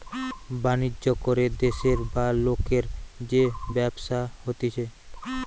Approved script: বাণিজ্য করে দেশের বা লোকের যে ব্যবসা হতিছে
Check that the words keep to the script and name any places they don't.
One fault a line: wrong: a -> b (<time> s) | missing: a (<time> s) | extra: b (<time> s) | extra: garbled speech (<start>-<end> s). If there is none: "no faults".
no faults